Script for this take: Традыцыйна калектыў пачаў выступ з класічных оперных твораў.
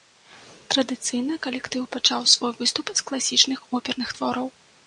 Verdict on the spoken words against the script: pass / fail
fail